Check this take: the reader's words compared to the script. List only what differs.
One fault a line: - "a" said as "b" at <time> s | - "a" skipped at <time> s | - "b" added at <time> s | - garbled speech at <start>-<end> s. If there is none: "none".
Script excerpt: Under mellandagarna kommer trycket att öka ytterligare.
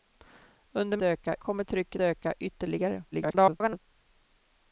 - "mellandagarna" said as "öka" at 1.0 s
- "att" skipped at 2.0 s
- garbled speech at 3.1-3.8 s